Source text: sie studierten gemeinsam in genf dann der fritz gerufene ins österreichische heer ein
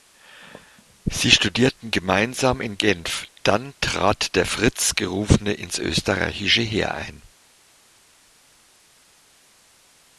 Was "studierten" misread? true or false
false